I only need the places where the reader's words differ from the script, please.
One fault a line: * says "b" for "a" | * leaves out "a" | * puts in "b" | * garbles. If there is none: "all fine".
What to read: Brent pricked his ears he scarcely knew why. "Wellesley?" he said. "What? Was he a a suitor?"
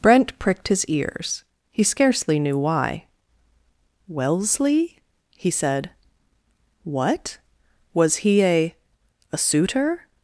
all fine